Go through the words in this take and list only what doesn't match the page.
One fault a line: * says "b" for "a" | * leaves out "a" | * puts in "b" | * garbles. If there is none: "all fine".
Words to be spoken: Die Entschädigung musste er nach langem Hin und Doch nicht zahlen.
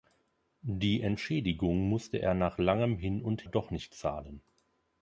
all fine